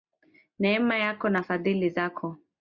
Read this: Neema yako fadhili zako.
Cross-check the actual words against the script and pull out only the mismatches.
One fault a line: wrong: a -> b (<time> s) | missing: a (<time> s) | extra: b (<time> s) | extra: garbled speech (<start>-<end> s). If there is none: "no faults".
extra: na (1.3 s)